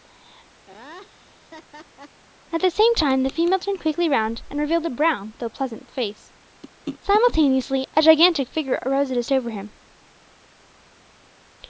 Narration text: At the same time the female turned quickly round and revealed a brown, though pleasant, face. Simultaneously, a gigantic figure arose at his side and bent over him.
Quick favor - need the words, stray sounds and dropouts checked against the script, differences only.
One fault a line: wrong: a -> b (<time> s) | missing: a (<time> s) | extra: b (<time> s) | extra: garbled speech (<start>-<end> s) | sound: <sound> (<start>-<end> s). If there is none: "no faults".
sound: laugh (0.7-2.2 s)
missing: side and bent (9.3 s)